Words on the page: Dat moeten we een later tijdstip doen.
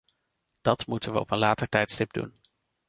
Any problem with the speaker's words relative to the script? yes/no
yes